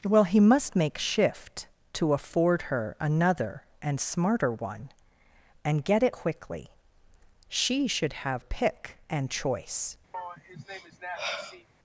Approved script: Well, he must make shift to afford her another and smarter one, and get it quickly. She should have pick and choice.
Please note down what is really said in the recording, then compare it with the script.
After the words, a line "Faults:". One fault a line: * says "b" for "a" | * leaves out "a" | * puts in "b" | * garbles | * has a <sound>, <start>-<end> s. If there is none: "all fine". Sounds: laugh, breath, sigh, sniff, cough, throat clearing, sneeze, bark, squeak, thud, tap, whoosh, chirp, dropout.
Well, he must make shift to afford her another and smarter one, and get it quickly. She should have pick and choice.
Faults:
* has a sigh, 10.1-11.7 s